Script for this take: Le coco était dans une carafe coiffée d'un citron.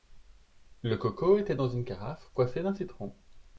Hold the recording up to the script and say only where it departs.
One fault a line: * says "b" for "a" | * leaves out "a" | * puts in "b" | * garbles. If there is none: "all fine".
all fine